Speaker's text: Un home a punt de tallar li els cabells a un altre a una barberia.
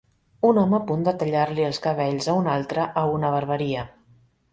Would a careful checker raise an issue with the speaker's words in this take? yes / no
no